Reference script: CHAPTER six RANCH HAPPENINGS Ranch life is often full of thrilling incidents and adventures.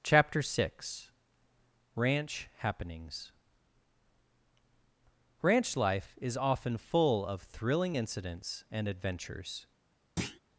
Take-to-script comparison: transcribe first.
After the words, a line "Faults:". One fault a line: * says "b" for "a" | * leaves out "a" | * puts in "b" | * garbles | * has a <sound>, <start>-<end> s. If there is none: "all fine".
CHAPTER six RANCH HAPPENINGS Ranch life is often full of thrilling incidents and adventures.
Faults:
* has a thud, 10.2-10.4 s